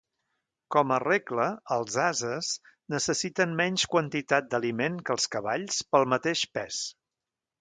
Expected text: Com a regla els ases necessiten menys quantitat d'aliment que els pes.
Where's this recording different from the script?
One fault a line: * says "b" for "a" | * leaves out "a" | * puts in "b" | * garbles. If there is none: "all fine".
* puts in "cavalls pel mateix"